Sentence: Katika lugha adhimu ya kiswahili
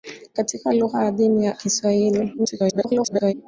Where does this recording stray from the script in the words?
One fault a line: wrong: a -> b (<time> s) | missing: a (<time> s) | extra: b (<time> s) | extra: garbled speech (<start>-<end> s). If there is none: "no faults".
extra: garbled speech (2.4-3.3 s)